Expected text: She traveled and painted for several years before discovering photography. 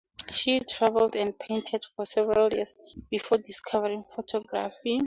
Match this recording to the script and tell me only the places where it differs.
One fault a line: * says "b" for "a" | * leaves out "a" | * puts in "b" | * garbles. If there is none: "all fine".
all fine